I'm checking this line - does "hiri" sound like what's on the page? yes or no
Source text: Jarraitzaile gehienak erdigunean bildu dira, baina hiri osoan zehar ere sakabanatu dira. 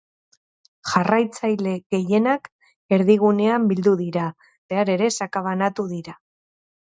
no